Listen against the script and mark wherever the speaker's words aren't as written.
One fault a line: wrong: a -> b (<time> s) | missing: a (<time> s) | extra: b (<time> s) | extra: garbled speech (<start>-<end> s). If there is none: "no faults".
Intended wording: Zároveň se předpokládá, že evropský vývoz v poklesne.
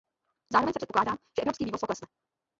no faults